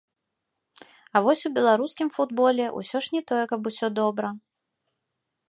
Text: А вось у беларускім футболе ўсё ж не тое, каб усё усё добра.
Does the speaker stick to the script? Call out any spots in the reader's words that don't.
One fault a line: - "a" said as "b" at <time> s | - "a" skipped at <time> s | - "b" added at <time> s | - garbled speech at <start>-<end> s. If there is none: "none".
- "усё" skipped at 3.9 s